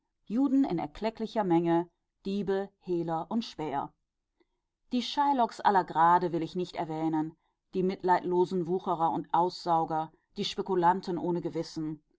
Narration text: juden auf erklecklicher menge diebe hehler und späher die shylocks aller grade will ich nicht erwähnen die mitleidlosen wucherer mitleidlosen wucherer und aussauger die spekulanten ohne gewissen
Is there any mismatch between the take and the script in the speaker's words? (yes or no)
yes